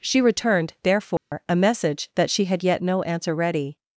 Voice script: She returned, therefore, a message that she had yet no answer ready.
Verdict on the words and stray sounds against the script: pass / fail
fail